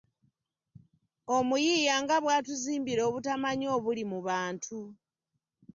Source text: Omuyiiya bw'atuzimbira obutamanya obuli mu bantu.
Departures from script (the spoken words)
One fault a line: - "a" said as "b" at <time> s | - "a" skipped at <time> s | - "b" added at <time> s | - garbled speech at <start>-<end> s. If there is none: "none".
- "nga" added at 2.0 s